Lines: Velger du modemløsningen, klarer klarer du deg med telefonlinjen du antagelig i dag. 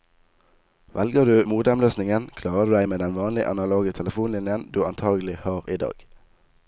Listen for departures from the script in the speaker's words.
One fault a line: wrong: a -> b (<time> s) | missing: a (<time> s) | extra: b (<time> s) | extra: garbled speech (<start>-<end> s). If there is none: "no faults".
missing: klarer (2.7 s)
extra: den vanlige analoge (3.0 s)
extra: har (5.5 s)